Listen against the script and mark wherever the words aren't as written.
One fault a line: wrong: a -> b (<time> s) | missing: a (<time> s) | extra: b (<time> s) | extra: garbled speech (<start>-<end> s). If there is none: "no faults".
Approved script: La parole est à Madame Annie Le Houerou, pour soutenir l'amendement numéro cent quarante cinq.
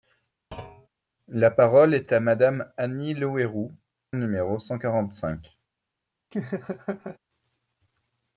missing: pour soutenir l'amendement (3.7 s)